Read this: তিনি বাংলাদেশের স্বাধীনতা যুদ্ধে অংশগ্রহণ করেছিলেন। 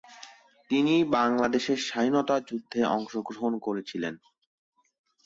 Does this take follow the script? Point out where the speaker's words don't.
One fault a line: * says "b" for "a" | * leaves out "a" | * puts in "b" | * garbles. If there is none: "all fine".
all fine